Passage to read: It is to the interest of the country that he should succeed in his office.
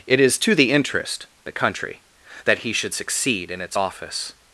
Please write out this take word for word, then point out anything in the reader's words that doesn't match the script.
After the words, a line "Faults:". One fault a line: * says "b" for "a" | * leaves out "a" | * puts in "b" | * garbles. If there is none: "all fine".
It is to the interest the country that he should succeed in its office.
Faults:
* leaves out "of"
* says "its" for "his"